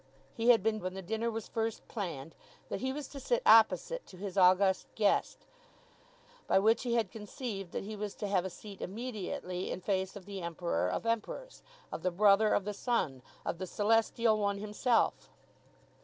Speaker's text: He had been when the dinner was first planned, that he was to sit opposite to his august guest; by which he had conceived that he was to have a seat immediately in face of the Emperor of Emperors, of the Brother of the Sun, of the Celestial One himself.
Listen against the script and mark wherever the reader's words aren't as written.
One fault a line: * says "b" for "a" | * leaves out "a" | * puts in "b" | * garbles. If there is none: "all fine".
all fine